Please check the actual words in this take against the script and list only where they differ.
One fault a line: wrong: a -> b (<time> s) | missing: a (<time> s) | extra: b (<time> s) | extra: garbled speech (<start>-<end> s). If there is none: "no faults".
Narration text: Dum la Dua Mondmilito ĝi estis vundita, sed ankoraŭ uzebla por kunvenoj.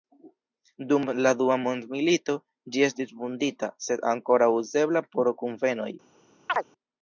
no faults